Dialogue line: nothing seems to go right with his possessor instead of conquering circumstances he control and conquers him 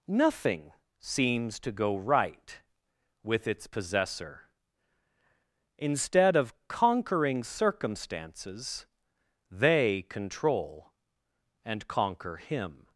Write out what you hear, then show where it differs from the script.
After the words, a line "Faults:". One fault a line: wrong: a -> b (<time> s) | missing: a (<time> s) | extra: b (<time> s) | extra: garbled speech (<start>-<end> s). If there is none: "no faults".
nothing seems to go right with its possessor instead of conquering circumstances they control and conquer him
Faults:
wrong: his -> its (3.5 s)
wrong: he -> they (9.5 s)
wrong: conquers -> conquer (11.9 s)